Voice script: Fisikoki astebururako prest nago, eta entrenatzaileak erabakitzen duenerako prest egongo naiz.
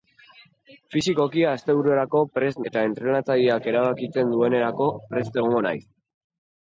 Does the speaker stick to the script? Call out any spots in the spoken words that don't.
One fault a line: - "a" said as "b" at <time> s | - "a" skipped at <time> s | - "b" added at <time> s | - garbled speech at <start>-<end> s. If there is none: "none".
- "nago" skipped at 2.6 s